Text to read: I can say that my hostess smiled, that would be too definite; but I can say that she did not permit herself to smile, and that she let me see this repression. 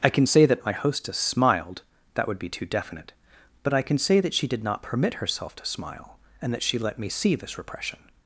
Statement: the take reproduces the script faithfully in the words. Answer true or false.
true